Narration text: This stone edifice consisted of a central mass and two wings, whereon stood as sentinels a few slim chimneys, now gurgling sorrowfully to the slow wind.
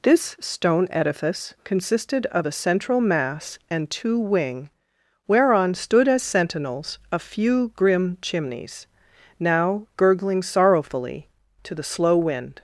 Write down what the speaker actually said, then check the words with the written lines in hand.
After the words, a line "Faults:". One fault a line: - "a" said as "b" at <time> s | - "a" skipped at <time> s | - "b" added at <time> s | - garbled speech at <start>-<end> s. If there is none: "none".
This stone edifice consisted of a central mass and two wing, whereon stood as sentinels a few grim chimneys, now gurgling sorrowfully to the slow wind.
Faults:
- "wings" said as "wing" at 4.2 s
- "slim" said as "grim" at 7.8 s